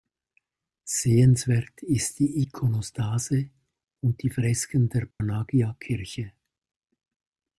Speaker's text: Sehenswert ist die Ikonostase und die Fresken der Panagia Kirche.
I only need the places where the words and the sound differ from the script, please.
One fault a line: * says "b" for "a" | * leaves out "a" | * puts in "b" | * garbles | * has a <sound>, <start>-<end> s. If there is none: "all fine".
* has a dropout, 5.1-5.2 s